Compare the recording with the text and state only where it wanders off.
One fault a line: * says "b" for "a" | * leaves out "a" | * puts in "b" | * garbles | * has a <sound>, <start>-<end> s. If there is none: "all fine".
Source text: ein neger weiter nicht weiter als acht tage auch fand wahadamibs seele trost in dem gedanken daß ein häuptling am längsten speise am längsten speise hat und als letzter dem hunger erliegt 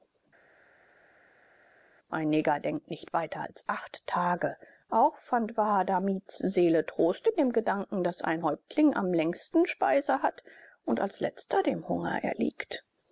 * says "denkt" for "weiter"
* leaves out "am längsten speise"